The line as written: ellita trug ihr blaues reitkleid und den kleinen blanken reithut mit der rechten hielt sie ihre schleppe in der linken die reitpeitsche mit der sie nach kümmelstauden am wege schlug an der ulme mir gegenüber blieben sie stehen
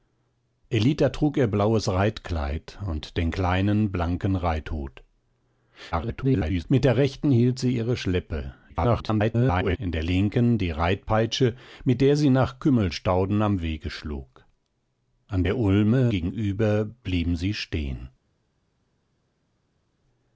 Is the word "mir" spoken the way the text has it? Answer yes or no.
no